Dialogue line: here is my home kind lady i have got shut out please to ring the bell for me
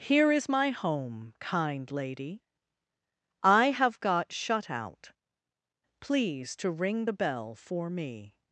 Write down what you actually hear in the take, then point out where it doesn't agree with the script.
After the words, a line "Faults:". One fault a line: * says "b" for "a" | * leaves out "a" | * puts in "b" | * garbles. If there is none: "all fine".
here is my home kind lady i have got shut out please to ring the bell for me
Faults:
all fine